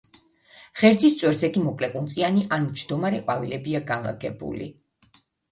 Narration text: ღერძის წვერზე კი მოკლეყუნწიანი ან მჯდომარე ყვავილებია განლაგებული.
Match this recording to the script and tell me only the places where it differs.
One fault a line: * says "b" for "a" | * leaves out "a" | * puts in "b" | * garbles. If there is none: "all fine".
all fine